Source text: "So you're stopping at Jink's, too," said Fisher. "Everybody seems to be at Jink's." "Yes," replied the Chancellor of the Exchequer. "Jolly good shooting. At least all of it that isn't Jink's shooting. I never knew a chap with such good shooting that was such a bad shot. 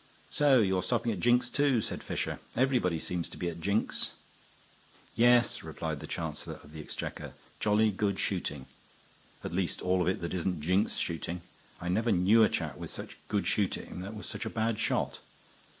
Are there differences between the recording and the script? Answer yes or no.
no